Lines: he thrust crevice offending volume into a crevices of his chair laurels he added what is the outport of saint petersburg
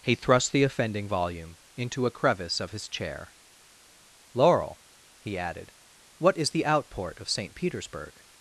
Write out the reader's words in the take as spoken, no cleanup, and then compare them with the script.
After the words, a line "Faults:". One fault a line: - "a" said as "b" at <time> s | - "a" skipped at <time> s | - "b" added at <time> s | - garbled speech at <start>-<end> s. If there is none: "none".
he thrust the offending volume into a crevice of his chair laurel he added what is the outport of saint petersburg
Faults:
- "crevice" said as "the" at 0.5 s
- "crevices" said as "crevice" at 2.1 s
- "laurels" said as "laurel" at 4.3 s